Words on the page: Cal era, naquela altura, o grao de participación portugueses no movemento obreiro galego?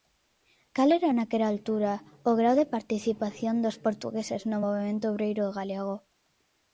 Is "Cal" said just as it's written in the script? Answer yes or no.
yes